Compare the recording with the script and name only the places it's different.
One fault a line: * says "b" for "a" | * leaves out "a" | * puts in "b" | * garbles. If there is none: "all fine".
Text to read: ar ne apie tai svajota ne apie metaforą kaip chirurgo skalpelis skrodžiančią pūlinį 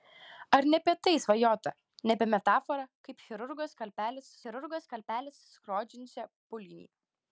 * puts in "chirurgo skalpelis"